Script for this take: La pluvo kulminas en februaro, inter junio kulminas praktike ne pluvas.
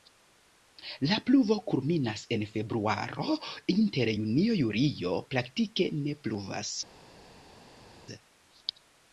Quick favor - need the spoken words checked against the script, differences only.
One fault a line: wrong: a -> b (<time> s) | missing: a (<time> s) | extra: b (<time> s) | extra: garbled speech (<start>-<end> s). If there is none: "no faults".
wrong: kulminas -> julio (4.6 s)